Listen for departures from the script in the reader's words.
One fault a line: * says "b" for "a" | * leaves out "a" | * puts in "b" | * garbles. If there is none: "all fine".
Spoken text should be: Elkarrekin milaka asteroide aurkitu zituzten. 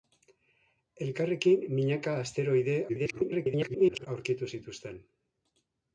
* garbles